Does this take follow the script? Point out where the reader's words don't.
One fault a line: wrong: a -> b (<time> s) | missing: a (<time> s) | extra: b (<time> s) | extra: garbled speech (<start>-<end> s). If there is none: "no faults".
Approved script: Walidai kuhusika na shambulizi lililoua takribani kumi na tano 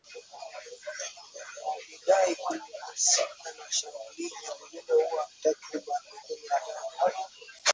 no faults